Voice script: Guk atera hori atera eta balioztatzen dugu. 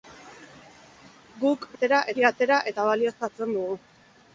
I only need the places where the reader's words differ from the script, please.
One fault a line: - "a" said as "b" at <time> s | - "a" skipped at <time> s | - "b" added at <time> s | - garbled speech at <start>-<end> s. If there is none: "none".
none